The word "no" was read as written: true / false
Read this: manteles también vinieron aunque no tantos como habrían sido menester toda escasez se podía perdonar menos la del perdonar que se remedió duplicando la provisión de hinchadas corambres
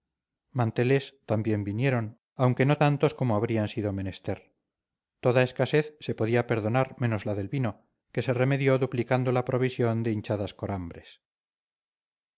true